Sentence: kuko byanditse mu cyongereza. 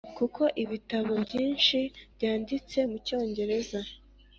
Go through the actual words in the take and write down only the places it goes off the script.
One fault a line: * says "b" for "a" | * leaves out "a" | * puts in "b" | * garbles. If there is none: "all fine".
* puts in "ibitabo byinshi"